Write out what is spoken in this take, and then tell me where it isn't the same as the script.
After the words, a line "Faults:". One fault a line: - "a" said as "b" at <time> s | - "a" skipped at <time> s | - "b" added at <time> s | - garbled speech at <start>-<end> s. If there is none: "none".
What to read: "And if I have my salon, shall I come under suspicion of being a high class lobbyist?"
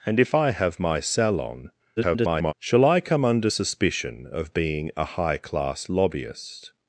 "And if I have my salon, [garbled] shall I come under suspicion of being a high class lobbyist?"
Faults:
- garbled speech at 2.0-2.5 s